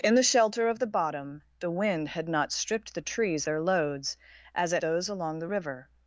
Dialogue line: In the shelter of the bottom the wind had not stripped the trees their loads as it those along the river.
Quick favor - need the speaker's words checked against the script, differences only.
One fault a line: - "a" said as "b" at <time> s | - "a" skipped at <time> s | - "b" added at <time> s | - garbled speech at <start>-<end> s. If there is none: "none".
none